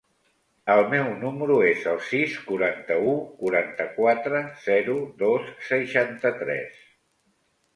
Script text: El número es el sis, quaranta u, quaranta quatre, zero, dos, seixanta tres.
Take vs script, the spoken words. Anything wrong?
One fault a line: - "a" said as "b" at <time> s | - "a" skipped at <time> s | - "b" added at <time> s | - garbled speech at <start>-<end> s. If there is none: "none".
- "meu" added at 0.9 s